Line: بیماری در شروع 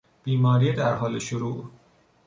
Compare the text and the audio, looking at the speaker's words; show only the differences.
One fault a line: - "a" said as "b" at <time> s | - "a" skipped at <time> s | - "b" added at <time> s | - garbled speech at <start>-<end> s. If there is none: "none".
- "حال" added at 0.9 s